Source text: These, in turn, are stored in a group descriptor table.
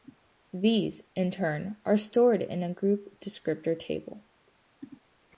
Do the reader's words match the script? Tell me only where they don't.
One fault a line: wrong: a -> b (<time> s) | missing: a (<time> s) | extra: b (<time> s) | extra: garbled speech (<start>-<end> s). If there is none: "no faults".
no faults